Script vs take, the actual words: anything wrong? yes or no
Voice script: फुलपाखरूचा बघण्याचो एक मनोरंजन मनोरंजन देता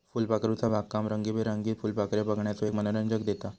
yes